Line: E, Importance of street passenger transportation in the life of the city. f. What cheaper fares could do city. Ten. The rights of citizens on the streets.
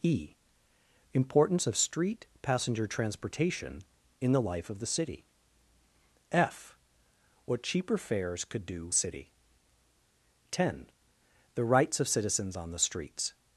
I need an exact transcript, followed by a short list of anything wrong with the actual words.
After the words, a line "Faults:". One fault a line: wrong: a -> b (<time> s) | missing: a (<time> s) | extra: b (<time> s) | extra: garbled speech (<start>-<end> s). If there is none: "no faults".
E, Importance of street passenger transportation in the life of the city. f. What cheaper fares could do city. Ten. The rights of citizens on the streets.
Faults:
no faults